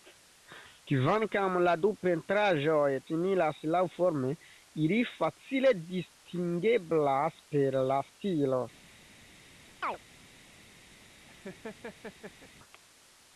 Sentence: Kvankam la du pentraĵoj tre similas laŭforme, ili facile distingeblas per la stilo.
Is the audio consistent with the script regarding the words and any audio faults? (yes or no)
no